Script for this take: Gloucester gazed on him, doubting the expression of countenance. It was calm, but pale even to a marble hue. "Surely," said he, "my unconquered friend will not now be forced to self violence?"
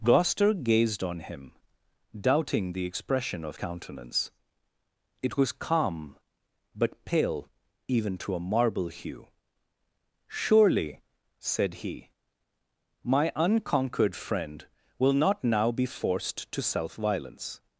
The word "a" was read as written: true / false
true